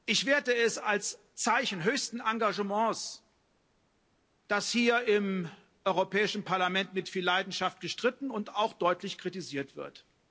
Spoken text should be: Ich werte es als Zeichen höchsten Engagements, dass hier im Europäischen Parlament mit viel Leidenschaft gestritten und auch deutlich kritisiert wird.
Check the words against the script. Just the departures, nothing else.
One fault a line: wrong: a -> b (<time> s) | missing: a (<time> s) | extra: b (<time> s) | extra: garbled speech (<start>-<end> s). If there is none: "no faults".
no faults